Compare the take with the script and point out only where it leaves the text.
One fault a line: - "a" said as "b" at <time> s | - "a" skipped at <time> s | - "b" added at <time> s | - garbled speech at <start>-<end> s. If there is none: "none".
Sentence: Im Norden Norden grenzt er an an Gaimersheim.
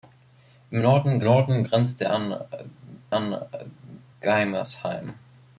none